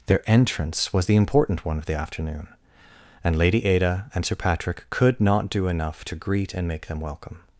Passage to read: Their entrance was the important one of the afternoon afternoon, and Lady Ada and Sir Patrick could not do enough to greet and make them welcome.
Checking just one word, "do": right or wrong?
right